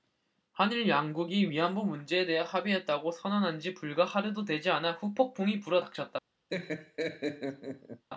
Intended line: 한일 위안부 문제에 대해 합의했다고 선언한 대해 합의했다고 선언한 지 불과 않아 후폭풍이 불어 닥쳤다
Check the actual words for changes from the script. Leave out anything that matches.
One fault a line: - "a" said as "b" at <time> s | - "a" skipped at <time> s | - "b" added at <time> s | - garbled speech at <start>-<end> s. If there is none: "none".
- "양국이" added at 0.9 s
- "대해 합의했다고 선언한 지 불과" said as "지 불과 하루도 되지" at 3.6 s